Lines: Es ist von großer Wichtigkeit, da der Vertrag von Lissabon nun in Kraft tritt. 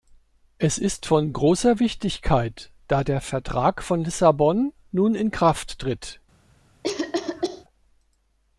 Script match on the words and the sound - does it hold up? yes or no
no